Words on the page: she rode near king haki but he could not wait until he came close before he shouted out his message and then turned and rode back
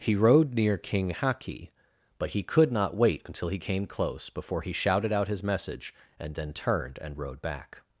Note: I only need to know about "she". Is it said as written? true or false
false